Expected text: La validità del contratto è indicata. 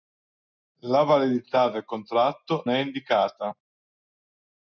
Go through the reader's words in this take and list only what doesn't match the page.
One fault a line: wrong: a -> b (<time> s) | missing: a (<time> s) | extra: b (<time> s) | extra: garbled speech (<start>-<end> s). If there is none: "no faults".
no faults